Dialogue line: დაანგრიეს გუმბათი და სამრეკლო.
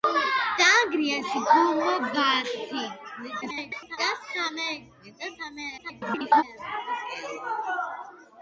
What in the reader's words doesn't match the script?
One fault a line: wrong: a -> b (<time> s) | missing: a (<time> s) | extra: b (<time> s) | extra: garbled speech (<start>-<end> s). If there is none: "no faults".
extra: garbled speech (3.4-4.0 s)
extra: garbled speech (5.8-6.4 s)